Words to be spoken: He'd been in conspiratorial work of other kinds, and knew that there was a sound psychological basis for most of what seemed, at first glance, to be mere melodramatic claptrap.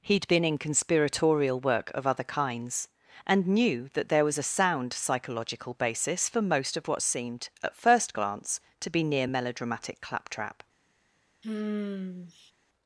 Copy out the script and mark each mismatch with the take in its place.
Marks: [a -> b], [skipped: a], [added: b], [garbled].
He'd been in conspiratorial work of other kinds, and knew that there was a sound psychological basis for most of what seemed, at first glance, to be [mere -> near] melodramatic claptrap.